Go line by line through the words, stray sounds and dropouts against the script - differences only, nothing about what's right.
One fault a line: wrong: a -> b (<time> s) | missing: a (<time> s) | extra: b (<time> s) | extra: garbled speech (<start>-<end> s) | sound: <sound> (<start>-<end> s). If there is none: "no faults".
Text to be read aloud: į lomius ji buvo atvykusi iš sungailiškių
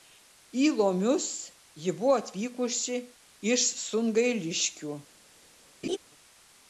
sound: laugh (5.8-6.0 s)